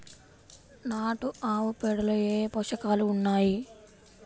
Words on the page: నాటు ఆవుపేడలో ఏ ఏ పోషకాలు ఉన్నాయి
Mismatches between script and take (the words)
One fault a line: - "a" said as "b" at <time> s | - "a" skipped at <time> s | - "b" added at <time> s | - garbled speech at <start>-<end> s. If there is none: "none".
none